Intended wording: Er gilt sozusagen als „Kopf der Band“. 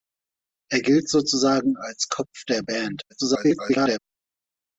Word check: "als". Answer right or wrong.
right